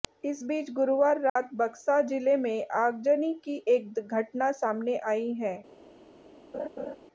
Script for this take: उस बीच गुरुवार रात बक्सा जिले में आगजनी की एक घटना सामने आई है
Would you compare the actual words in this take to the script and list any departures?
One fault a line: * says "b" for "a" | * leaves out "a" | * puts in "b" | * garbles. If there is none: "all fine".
* says "इस" for "उस"